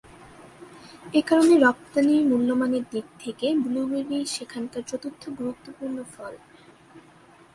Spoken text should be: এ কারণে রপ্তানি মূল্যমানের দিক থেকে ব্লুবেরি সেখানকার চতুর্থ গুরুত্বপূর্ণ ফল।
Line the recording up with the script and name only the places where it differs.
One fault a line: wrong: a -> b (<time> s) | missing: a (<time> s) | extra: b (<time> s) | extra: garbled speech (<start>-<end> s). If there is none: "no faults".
no faults